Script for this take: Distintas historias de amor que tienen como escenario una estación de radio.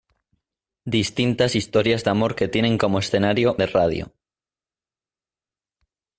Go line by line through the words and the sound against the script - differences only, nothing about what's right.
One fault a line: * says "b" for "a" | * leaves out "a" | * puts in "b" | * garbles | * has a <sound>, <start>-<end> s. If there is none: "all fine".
* leaves out "una estación"